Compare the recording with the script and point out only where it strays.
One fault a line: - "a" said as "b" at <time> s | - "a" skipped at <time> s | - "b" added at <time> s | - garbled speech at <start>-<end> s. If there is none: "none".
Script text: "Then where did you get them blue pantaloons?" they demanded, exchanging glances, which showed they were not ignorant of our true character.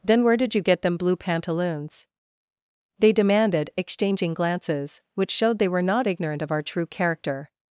none